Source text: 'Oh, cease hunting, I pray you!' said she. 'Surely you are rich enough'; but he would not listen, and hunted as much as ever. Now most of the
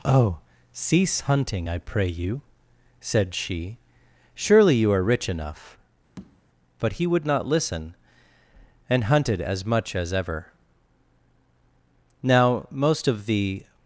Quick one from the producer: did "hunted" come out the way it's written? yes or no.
yes